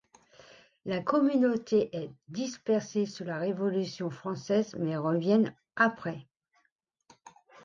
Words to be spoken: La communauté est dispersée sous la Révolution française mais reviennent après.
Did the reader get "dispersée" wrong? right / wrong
right